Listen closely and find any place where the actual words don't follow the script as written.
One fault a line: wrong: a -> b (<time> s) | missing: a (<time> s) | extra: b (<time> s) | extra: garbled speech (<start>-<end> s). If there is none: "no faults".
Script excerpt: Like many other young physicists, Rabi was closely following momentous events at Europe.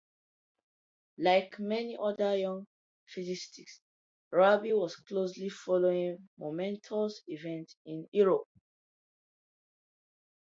wrong: at -> in (7.8 s)